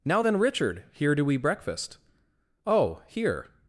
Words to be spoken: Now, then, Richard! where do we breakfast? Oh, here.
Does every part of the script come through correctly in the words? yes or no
no